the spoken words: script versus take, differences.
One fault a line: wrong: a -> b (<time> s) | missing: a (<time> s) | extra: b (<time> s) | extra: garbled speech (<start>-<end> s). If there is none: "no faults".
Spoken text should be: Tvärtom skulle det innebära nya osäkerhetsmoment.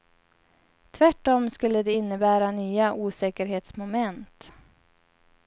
no faults